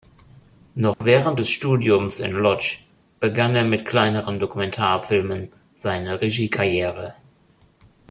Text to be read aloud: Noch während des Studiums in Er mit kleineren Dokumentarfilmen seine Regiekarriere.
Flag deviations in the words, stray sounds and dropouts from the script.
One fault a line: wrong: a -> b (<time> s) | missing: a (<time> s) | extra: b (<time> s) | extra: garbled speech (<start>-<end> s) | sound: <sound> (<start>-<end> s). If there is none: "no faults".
sound: dropout (0.9-1.0 s)
extra: Łódź begann (2.4 s)